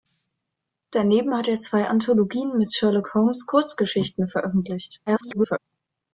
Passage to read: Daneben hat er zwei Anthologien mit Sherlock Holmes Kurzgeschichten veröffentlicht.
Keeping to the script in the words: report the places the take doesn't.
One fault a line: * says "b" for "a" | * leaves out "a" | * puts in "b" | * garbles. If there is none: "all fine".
* garbles